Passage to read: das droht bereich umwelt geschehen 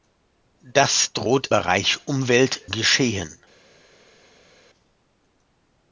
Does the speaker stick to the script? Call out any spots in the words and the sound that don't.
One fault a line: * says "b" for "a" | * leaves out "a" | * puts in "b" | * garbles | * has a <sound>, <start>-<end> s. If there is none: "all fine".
all fine